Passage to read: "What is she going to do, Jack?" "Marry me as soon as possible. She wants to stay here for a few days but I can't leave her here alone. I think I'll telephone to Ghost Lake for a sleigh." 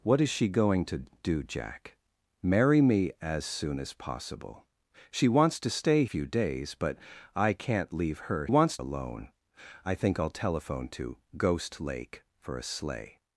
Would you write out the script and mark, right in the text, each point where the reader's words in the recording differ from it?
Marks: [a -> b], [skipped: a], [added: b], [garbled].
"What is she going to do, Jack?" "Marry me as soon as possible. She wants to stay [skipped: here for a] few days but I can't leave her [here -> wants] alone. I think I'll telephone to Ghost Lake for a sleigh."